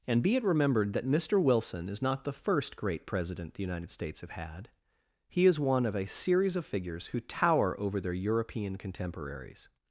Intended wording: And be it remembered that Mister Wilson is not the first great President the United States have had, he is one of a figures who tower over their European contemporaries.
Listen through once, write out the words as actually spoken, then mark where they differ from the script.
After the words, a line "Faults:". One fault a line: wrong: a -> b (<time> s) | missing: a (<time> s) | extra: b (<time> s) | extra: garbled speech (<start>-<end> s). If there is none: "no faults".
And be it remembered that Mister Wilson is not the first great President the United States have had, he is one of a series of figures who tower over their European contemporaries.
Faults:
extra: series of (6.1 s)